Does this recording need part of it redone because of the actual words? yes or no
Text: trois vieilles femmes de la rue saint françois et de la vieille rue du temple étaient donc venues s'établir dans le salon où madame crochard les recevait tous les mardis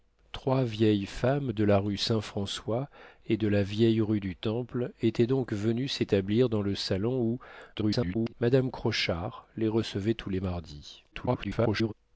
yes